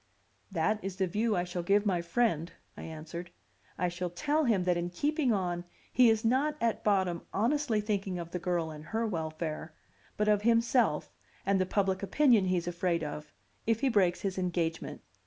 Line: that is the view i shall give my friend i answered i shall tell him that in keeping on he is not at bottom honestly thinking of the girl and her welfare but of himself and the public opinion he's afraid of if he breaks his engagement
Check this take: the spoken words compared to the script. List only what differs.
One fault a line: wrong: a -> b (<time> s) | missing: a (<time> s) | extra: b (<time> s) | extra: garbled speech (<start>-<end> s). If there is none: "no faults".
no faults